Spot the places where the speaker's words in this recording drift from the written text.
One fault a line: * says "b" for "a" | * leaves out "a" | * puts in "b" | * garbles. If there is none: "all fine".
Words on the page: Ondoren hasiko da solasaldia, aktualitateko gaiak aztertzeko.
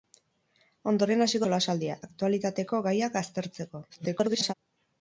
* leaves out "da"
* garbles